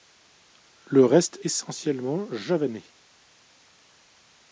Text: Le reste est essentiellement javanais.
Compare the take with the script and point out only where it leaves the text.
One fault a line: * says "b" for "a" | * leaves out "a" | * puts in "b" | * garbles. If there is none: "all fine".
* leaves out "est"